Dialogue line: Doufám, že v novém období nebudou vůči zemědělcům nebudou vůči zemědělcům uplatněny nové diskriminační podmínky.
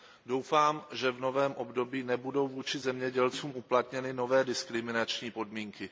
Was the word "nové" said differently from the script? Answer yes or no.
no